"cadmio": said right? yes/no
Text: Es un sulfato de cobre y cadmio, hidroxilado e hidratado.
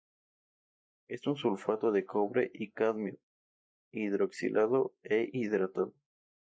yes